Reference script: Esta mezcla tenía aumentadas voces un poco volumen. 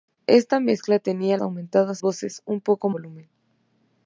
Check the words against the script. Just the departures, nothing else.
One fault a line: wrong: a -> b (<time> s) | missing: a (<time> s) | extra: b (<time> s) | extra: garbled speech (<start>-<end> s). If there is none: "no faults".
no faults